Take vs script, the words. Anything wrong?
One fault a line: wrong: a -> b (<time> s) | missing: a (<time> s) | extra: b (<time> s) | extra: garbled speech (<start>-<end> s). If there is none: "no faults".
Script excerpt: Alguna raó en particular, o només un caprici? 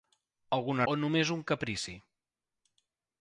missing: raó en particular (0.8 s)